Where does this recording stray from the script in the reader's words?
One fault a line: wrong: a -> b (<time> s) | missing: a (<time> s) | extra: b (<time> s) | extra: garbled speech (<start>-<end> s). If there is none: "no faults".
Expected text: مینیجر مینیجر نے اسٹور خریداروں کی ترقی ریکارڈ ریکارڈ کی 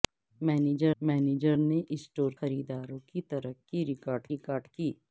no faults